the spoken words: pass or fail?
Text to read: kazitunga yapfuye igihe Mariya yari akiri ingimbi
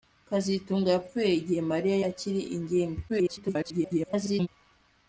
fail